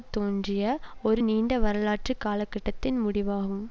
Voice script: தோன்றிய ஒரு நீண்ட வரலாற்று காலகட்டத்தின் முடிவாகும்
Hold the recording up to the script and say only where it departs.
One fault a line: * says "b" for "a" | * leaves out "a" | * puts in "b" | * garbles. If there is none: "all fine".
all fine